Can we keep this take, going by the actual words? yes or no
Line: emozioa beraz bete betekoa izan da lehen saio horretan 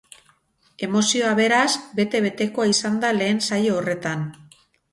yes